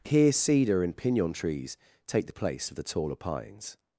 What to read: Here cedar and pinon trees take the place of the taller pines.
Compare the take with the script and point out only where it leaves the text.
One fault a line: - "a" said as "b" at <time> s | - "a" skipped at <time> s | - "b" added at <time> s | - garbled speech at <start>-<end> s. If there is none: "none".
none